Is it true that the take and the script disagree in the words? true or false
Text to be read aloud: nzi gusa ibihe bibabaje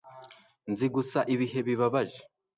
false